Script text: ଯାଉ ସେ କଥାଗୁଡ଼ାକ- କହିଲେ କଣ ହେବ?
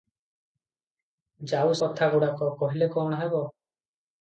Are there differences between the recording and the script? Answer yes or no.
yes